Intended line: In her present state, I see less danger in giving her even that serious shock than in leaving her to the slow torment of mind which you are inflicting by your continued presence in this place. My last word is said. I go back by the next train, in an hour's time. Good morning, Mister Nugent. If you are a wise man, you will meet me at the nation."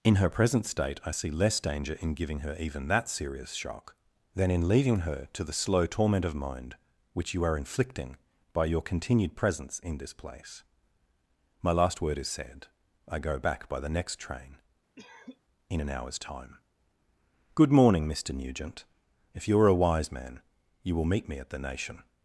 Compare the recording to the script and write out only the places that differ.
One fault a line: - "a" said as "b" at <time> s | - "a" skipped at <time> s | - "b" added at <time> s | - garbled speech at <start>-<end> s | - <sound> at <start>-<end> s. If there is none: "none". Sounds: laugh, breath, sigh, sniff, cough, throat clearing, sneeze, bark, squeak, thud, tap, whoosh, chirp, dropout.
- cough at 15.0-15.4 s